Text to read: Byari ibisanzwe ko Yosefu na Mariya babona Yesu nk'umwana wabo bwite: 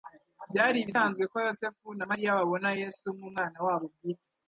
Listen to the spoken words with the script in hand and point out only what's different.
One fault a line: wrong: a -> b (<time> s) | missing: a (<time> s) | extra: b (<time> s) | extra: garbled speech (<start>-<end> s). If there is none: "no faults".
no faults